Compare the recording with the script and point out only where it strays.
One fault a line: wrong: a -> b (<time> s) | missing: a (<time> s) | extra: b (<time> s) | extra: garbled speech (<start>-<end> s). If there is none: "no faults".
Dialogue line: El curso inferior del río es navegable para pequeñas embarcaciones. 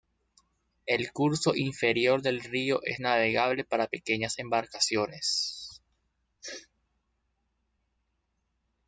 no faults